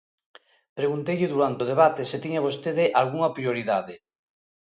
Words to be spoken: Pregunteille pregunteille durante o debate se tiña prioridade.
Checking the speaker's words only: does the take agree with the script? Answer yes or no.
no